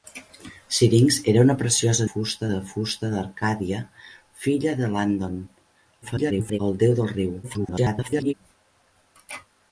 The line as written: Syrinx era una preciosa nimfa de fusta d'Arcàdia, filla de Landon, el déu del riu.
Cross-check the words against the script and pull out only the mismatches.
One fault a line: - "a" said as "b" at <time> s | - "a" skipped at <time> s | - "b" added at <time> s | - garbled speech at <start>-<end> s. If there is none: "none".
- "nimfa" said as "fusta" at 2.1 s
- garbled speech at 6.0-6.6 s
- garbled speech at 7.4-8.3 s